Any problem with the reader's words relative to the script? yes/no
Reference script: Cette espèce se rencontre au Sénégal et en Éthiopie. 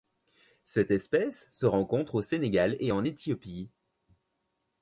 no